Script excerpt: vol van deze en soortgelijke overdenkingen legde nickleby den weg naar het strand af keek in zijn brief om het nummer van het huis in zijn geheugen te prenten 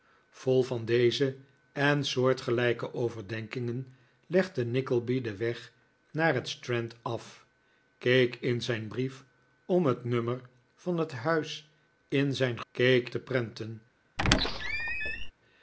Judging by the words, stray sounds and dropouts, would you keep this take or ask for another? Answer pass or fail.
fail